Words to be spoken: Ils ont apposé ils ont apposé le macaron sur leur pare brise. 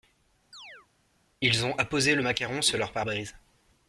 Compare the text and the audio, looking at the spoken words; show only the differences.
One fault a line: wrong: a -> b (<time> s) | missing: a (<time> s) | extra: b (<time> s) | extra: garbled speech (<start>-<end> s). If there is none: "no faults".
missing: ils ont apposé (2.1 s)